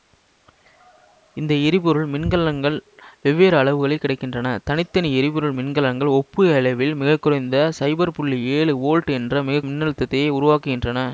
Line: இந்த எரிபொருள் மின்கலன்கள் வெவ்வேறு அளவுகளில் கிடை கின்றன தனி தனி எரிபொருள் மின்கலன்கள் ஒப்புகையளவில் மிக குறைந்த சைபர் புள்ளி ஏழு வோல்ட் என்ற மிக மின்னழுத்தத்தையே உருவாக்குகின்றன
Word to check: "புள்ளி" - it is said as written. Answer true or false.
true